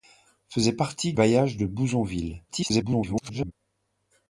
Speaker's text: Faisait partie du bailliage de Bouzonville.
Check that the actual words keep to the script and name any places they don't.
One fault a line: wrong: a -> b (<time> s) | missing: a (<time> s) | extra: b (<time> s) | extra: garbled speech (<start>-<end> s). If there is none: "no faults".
missing: du (1.1 s)
extra: garbled speech (2.5-3.5 s)